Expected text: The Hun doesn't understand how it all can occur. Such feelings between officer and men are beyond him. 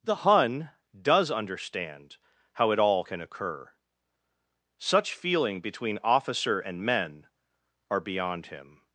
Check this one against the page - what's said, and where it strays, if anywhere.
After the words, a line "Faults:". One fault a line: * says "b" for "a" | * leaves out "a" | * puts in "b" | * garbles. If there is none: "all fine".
The Hun does understand how it all can occur. Such feeling between officer and men are beyond him.
Faults:
* says "does" for "doesn't"
* says "feeling" for "feelings"